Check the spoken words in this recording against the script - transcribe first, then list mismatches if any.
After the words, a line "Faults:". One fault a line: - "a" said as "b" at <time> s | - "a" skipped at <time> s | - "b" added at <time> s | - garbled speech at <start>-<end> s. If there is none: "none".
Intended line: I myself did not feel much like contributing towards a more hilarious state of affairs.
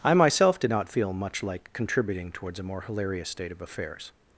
I myself did not feel much like contributing towards a more hilarious state of affairs.
Faults:
none